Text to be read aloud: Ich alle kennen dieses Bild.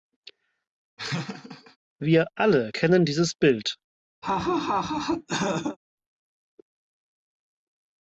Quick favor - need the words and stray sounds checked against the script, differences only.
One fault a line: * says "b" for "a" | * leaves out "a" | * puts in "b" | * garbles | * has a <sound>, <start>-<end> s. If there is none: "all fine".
* has a laugh, 1.0-1.8 s
* says "Wir" for "Ich"
* has a laugh, 4.2-5.8 s